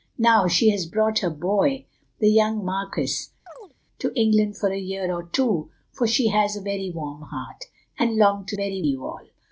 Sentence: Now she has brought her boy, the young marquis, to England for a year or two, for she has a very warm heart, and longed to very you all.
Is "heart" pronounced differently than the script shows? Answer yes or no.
no